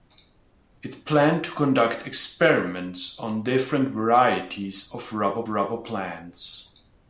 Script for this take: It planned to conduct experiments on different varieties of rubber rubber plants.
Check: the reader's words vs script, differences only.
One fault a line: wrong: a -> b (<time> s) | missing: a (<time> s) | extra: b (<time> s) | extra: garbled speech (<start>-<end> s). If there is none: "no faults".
no faults